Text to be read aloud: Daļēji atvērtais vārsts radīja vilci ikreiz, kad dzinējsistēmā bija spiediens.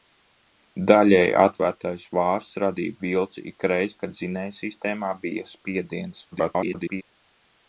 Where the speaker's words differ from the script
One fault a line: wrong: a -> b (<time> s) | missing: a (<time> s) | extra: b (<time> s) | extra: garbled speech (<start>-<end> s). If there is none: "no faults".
extra: garbled speech (6.3-7.0 s)